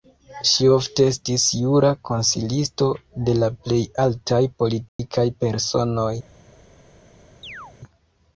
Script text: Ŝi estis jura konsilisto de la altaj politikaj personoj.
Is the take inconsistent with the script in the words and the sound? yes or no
yes